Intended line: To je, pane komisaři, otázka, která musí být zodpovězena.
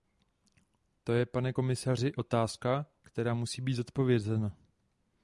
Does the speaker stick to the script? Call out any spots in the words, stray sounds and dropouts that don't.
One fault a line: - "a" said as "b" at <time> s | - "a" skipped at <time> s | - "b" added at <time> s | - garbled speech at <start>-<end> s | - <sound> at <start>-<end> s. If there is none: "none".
none